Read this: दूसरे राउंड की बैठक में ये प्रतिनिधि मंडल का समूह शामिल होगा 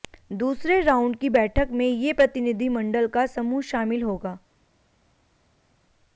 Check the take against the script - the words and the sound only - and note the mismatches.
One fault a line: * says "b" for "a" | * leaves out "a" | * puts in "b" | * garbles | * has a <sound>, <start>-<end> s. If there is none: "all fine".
all fine